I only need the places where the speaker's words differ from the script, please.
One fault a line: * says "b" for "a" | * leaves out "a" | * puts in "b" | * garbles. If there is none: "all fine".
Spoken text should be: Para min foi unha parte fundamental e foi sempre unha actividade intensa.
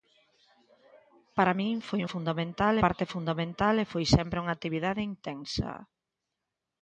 * says "fundamental" for "unha"